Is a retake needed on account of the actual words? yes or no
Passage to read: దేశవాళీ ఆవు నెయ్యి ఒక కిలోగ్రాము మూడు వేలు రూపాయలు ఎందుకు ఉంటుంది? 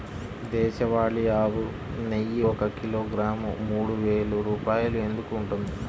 no